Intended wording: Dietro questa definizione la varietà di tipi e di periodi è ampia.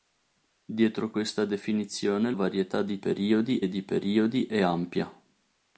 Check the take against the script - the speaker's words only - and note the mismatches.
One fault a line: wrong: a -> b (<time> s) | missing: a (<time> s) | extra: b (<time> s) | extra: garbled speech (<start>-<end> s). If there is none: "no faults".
missing: la (2.3 s)
wrong: tipi -> periodi (3.0 s)